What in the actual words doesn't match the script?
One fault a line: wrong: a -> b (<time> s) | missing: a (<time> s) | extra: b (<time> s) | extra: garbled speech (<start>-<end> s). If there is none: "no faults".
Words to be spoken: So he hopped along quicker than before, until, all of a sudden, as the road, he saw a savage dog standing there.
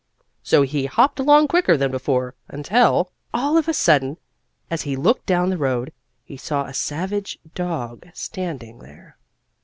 extra: he looked down (4.8 s)